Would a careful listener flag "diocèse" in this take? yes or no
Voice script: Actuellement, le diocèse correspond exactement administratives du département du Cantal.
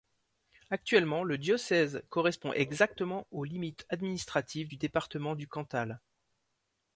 no